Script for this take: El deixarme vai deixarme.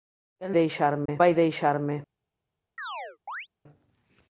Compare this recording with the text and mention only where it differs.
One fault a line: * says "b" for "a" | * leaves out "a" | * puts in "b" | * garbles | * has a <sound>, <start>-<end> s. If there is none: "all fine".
* has a dropout, 1.1-1.1 s
* has a chirp, 2.8-3.5 s